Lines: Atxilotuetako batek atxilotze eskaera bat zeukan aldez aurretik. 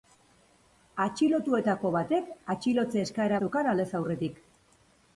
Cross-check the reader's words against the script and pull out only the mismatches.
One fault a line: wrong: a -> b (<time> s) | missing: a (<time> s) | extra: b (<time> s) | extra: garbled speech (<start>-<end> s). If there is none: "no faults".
missing: bat (3.4 s)